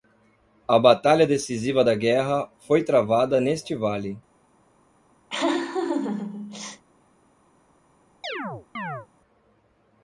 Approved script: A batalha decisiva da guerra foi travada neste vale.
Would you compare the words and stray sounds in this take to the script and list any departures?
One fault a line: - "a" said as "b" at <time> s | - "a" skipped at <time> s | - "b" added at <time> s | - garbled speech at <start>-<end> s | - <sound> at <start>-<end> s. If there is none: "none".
- laugh at 5.3-6.8 s
- chirp at 8.2-9.1 s